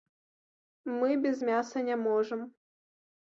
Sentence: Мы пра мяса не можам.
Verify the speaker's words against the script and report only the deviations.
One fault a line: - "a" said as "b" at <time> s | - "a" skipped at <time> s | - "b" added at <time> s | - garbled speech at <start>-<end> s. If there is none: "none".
- "пра" said as "без" at 1.2 s